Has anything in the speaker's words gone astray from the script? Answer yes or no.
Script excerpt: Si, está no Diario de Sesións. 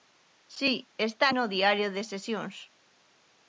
no